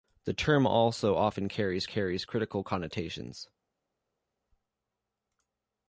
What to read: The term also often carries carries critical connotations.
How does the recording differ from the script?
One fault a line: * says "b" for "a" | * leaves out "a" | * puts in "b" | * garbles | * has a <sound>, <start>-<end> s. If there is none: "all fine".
all fine